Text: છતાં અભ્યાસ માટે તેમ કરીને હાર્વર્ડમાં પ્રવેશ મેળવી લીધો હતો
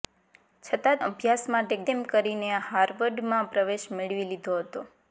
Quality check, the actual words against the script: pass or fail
pass